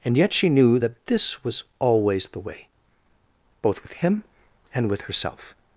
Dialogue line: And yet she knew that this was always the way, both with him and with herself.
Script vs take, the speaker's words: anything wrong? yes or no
no